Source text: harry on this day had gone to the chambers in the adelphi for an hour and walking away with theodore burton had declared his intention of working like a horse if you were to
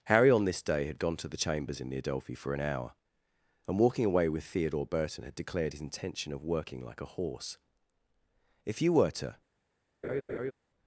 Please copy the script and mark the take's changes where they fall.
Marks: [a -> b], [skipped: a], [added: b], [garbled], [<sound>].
harry on this day had gone to the chambers in the adelphi for an hour and walking away with theodore burton had declared his intention of working like a horse if you were to [laugh]